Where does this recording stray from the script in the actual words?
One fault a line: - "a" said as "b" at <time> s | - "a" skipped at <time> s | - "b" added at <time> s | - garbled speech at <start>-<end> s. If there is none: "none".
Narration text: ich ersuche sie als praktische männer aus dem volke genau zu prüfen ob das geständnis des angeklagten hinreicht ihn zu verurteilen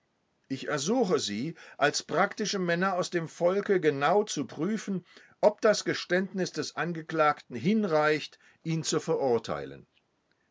none